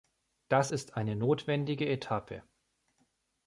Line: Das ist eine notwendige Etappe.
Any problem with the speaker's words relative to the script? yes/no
no